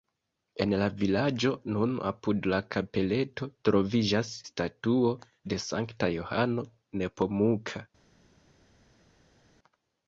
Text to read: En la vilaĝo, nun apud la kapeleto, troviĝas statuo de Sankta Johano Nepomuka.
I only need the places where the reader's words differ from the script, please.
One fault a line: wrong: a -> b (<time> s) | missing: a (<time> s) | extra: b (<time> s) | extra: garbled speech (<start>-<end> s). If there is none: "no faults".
no faults